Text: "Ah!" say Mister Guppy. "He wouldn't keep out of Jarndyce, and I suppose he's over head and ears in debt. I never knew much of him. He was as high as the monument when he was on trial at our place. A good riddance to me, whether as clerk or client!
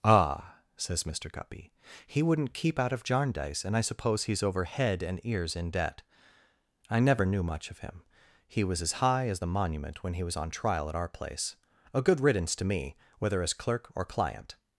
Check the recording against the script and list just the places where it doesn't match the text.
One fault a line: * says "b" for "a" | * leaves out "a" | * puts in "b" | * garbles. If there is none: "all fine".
* says "says" for "say"